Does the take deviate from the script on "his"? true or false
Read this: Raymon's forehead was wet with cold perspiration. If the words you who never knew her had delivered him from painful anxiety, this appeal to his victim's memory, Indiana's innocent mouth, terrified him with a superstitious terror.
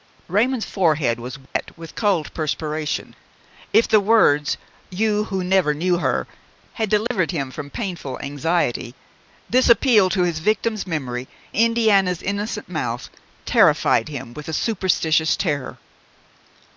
false